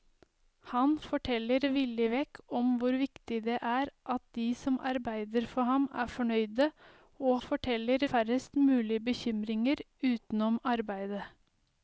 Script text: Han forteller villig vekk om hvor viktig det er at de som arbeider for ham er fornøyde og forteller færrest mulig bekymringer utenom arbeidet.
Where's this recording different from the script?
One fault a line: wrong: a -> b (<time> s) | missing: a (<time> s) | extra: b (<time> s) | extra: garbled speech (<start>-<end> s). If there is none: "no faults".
no faults